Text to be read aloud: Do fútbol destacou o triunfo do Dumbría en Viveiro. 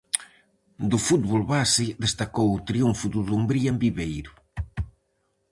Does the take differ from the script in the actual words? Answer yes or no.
yes